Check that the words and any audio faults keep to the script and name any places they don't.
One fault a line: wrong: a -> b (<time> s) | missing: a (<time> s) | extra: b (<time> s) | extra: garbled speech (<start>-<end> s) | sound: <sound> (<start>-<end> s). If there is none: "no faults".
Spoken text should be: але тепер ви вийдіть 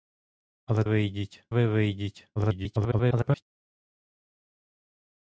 wrong: тепер -> вийдіть (0.8 s)
extra: garbled speech (2.4-3.4 s)